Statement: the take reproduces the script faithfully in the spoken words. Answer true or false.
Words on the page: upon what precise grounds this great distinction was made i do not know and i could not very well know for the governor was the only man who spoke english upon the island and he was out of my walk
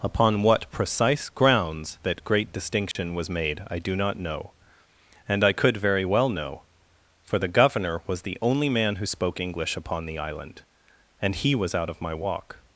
false